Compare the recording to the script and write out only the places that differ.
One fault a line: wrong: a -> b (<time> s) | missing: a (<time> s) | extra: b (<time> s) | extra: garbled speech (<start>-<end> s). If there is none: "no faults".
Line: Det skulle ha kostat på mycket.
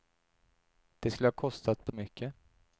no faults